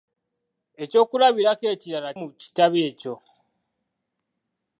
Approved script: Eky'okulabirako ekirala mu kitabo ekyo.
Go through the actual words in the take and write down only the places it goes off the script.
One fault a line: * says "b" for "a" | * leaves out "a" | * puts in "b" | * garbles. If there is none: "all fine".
all fine